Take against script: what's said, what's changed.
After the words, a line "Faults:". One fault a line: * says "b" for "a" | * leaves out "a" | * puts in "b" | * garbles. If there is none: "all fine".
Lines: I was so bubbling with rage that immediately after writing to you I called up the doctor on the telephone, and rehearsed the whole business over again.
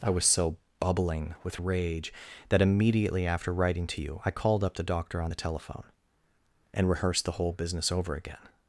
I was so bubbling with rage that immediately after writing to you I called up the doctor on the telephone, and rehearsed the whole business over again.
Faults:
all fine